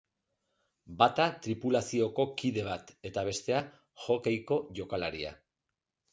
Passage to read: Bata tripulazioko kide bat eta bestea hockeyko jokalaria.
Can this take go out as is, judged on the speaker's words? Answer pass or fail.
pass